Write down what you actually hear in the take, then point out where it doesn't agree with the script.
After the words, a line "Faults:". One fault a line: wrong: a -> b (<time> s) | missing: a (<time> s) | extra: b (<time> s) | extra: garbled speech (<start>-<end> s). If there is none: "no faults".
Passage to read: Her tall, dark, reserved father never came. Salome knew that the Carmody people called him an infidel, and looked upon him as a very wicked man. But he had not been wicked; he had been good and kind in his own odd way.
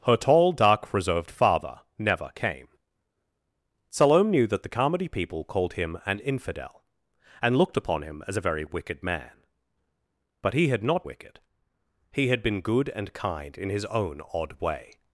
Her tall, dark, reserved father never came. Salome knew that the Carmody people called him an infidel, and looked upon him as a very wicked man. But he had not wicked; he had been good and kind in his own odd way.
Faults:
missing: been (11.1 s)